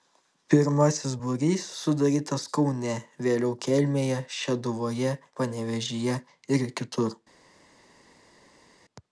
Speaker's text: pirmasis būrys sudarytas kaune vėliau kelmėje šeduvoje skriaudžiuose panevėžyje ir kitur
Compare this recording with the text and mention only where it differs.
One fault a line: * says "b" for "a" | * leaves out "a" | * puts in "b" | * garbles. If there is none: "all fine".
* leaves out "skriaudžiuose"